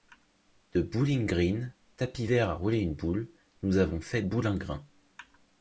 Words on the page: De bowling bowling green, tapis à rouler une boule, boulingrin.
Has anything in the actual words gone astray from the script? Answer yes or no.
yes